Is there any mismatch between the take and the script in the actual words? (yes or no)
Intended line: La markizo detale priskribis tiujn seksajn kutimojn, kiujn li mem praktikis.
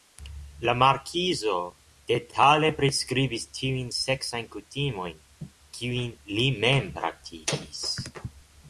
no